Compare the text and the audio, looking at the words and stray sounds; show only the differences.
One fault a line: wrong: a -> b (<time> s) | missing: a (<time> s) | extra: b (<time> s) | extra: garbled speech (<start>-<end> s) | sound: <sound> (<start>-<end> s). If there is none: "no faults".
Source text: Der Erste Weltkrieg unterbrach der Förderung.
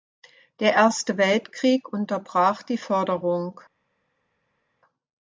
wrong: der -> die (2.6 s)